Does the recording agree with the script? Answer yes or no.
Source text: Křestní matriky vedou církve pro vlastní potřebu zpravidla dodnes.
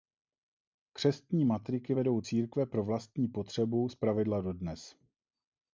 yes